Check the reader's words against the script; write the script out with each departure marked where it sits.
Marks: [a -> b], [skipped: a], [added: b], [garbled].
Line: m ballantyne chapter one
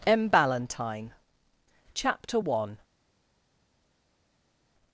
m ballantyne chapter one